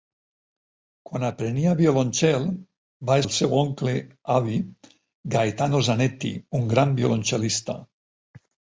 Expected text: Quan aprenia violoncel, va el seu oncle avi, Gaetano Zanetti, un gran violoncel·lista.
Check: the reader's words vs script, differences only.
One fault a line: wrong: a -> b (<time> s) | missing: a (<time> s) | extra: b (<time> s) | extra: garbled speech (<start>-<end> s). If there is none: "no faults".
no faults